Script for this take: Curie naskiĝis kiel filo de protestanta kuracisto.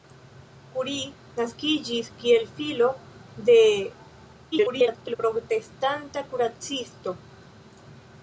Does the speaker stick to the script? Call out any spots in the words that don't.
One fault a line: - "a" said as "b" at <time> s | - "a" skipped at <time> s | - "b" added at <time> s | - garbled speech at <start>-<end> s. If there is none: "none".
- garbled speech at 4.5-5.2 s